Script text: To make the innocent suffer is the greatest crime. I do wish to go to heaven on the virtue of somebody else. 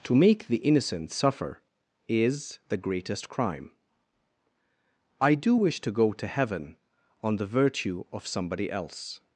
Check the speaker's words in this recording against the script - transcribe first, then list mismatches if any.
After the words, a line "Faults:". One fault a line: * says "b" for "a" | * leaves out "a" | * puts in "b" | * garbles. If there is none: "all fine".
To make the innocent suffer is the greatest crime. I do wish to go to heaven on the virtue of somebody else.
Faults:
all fine